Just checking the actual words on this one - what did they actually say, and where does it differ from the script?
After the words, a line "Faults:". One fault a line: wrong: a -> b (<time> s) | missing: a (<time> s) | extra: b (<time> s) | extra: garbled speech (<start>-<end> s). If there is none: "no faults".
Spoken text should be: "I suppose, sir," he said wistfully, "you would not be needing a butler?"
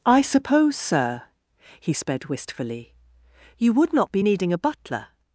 "I suppose, sir," he sped wistfully, "you would not be needing a butler?"
Faults:
wrong: said -> sped (1.9 s)